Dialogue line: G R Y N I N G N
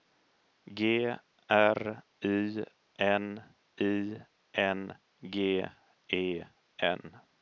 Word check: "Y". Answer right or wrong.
right